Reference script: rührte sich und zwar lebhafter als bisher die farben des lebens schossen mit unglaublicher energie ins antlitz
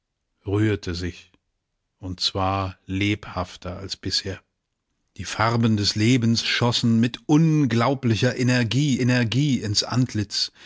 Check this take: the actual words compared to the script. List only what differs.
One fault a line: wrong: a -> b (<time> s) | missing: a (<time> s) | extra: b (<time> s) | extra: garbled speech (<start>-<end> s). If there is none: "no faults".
extra: energie (9.0 s)